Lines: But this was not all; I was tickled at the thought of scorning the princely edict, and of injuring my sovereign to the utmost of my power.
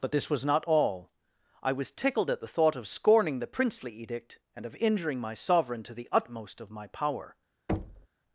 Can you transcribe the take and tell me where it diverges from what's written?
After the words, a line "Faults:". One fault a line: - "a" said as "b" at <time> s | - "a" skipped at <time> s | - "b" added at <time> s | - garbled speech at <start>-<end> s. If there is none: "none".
But this was not all; I was tickled at the thought of scorning the princely edict, and of injuring my sovereign to the utmost of my power.
Faults:
none